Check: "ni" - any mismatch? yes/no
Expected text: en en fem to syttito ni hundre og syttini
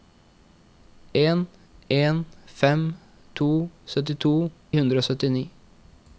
yes